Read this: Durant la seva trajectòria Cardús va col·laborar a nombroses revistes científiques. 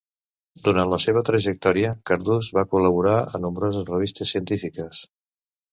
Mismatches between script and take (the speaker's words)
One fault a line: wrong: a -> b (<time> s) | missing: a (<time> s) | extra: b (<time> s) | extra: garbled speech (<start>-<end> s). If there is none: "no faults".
no faults